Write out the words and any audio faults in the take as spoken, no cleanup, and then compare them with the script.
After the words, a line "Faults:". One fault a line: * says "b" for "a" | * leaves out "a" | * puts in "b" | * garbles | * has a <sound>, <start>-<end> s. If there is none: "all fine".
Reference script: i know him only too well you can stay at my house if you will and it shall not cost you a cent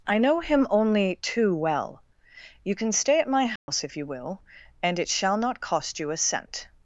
i know him only too well you can stay at my house if you will and it shall not cost you a cent
Faults:
* has a dropout, 3.6-3.7 s